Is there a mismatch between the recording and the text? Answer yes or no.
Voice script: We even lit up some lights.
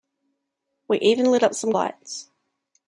no